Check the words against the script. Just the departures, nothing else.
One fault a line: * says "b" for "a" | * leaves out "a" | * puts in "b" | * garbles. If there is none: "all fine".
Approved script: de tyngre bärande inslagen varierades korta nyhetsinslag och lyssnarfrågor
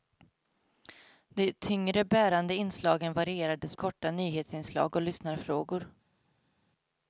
all fine